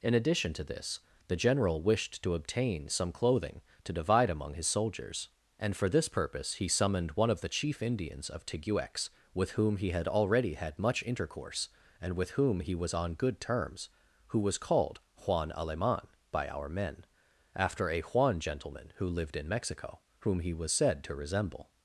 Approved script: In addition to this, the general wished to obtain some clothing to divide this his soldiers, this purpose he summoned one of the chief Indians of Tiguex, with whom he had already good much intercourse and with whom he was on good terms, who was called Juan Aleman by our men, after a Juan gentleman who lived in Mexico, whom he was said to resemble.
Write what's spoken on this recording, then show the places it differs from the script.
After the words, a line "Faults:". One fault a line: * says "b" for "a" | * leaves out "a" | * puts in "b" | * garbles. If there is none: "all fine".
In addition to this, the general wished to obtain some clothing to divide among his soldiers, and for this purpose he summoned one of the chief Indians of Tiguex, with whom he had already had much intercourse and with whom he was on good terms, who was called Juan Aleman by our men, after a Juan gentleman who lived in Mexico, whom he was said to resemble.
Faults:
* says "among" for "this"
* puts in "and for"
* says "had" for "good"